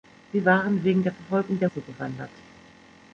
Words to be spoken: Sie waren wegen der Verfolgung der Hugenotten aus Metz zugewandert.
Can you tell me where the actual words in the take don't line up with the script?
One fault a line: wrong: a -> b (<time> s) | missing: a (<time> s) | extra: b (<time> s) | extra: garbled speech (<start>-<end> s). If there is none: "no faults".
missing: Hugenotten aus Metz (1.7 s)